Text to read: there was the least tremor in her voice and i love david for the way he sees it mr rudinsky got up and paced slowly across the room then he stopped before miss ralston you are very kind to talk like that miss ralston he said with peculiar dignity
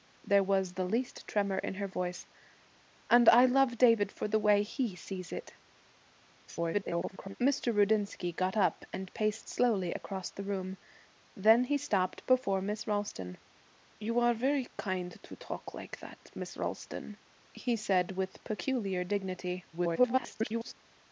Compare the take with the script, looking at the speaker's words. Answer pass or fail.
fail